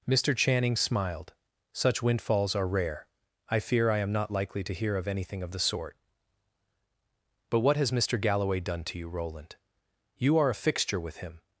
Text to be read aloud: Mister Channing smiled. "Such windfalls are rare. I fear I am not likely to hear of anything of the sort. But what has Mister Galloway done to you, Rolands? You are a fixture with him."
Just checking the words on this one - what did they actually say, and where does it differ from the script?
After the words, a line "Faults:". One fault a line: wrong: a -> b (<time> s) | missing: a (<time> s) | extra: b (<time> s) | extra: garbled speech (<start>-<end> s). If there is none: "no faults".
Mister Channing smiled. "Such windfalls are rare. I fear I am not likely to hear of anything of the sort. But what has Mister Galloway done to you, Roland? You are a fixture with him."
Faults:
wrong: Rolands -> Roland (9.1 s)